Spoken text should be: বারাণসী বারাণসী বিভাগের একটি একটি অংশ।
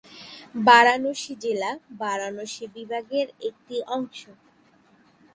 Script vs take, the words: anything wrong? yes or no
yes